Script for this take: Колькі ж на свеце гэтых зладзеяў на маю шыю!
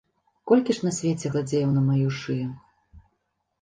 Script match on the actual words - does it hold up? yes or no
no